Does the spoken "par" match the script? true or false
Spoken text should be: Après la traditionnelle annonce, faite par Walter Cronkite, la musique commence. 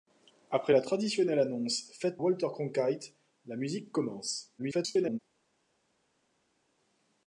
false